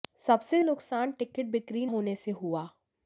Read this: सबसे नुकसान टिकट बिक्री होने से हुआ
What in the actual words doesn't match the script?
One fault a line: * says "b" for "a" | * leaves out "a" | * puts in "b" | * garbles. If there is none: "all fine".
all fine